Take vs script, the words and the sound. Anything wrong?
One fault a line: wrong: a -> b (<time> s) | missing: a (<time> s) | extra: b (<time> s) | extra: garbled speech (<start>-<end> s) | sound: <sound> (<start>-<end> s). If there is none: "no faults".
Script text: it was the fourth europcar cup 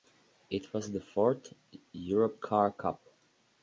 no faults